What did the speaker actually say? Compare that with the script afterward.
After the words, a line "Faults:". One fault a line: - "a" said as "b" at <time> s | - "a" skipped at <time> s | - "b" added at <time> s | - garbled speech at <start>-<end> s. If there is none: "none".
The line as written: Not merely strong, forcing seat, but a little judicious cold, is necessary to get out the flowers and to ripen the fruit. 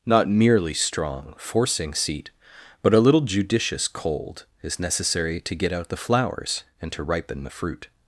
Not merely strong, forcing seat, but a little judicious cold, is necessary to get out the flowers and to ripen the fruit.
Faults:
none